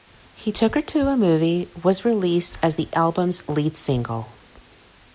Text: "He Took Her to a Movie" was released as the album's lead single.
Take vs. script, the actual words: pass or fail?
pass